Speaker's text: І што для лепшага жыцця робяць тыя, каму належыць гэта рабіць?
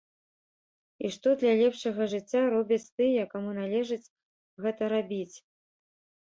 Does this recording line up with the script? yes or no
yes